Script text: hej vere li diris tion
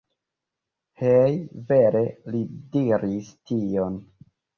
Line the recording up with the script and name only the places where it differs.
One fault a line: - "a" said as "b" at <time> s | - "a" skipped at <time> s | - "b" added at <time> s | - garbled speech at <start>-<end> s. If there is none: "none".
none